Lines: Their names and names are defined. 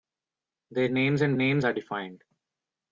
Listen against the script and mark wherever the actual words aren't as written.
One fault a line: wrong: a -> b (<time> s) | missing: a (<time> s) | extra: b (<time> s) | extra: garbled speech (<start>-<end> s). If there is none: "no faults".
no faults